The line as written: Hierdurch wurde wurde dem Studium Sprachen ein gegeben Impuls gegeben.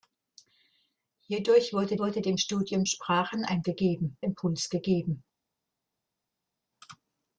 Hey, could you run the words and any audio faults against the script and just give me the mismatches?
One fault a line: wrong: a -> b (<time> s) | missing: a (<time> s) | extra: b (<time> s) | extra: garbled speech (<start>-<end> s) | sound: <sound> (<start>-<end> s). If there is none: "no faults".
no faults